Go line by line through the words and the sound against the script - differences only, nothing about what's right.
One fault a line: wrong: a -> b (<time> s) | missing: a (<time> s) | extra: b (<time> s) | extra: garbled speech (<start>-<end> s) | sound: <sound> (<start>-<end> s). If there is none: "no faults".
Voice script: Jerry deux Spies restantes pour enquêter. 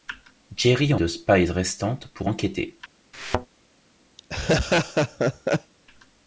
sound: thud (3.1-3.5 s)
sound: laugh (4.2-5.7 s)